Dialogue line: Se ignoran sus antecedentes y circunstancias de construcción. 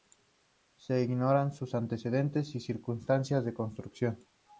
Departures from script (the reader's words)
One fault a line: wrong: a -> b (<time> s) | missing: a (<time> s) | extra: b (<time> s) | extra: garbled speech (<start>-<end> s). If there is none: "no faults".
no faults